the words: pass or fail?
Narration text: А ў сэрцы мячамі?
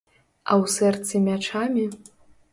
pass